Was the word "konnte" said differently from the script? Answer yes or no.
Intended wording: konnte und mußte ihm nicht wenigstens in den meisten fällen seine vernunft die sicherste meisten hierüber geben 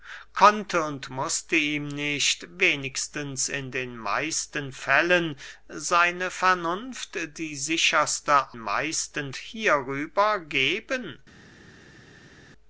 no